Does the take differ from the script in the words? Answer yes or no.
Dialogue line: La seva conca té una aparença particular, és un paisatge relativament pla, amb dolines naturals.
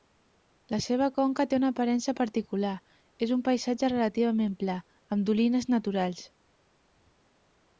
no